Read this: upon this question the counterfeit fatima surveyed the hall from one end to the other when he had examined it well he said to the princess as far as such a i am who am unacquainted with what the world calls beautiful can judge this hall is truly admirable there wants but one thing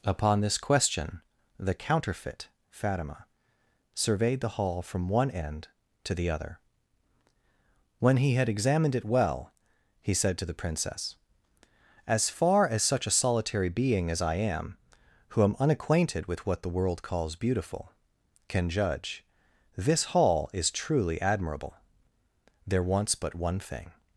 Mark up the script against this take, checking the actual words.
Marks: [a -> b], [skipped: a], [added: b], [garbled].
upon this question the counterfeit fatima surveyed the hall from one end to the other when he had examined it well he said to the princess as far as such a [added: solitary being as] i am who am unacquainted with what the world calls beautiful can judge this hall is truly admirable there wants but one thing